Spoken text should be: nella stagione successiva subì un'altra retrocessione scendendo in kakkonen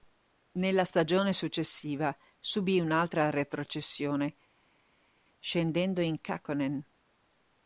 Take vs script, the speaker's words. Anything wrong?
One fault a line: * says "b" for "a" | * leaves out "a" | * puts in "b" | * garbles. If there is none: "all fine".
all fine